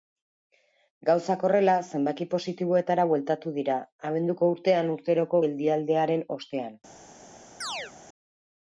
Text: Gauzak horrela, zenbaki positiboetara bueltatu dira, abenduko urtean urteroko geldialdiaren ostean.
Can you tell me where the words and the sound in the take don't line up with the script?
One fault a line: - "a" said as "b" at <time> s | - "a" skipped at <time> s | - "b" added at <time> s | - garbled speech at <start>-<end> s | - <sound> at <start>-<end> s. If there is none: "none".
- chirp at 7.6-7.9 s